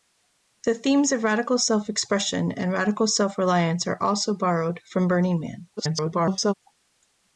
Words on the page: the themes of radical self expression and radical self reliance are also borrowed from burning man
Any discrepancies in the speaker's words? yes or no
yes